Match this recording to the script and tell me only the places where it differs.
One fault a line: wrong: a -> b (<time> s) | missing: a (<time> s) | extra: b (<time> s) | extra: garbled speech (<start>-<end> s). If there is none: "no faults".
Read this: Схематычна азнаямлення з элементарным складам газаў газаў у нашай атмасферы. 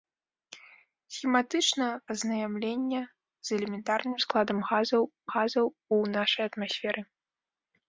no faults